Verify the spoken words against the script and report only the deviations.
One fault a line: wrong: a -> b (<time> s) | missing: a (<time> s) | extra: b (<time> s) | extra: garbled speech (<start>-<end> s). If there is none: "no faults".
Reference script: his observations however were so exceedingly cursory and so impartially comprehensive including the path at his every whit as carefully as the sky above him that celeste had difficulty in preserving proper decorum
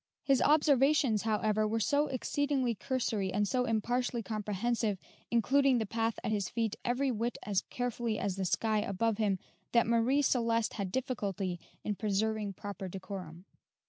extra: feet (6.5 s)
extra: marie (9.9 s)